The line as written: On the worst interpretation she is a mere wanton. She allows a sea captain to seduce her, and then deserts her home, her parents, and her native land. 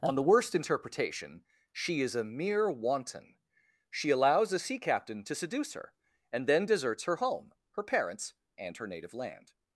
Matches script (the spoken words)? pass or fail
pass